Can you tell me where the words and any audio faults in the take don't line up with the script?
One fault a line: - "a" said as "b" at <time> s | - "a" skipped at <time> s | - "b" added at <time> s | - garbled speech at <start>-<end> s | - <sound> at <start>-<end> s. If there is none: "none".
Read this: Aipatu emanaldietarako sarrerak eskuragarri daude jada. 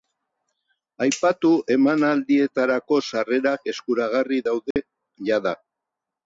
- dropout at 4.7-4.8 s